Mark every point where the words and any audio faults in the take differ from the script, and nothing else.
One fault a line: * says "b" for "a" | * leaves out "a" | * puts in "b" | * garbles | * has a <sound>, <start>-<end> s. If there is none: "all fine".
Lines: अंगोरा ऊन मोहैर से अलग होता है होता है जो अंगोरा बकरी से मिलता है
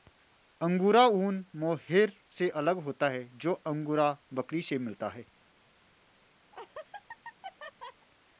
* leaves out "होता है"
* has a laugh, 6.5-8.1 s